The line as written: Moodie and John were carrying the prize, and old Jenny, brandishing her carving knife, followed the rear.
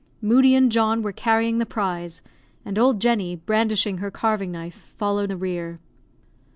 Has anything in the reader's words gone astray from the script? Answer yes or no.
no